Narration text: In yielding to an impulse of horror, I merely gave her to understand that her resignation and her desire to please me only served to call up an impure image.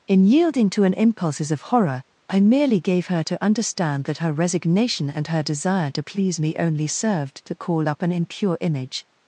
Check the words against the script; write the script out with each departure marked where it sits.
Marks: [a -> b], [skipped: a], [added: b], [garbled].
In yielding to an [impulse -> impulses] of horror, I merely gave her to understand that her resignation and her desire to please me only served to call up an impure image.